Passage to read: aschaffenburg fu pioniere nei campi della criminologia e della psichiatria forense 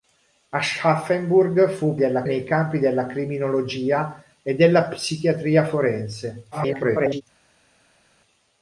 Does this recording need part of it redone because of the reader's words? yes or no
yes